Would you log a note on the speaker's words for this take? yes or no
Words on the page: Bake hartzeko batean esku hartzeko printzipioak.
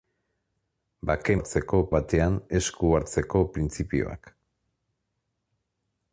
no